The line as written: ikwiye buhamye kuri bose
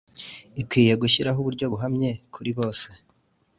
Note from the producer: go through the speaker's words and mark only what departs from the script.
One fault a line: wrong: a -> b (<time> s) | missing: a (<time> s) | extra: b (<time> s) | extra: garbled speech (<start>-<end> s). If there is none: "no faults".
extra: gushyiraho uburyo (1.0 s)